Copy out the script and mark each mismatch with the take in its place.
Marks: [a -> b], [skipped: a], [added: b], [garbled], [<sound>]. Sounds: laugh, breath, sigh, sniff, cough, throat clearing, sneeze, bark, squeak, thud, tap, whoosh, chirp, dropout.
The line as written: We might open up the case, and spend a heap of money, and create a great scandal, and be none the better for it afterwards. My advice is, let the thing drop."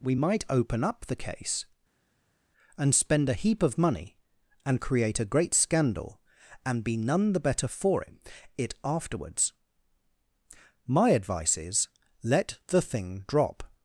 We might open up the case, and spend a heap of money, and create a great scandal, and be none the better for it [added: it] afterwards. My advice is, let the thing drop."